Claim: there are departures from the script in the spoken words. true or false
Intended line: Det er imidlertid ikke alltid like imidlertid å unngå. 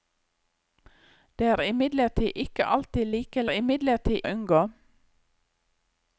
false